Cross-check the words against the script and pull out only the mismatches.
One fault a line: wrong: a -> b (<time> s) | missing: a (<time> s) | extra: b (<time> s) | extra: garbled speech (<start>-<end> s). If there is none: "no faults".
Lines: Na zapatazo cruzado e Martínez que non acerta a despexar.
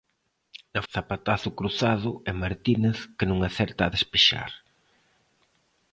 no faults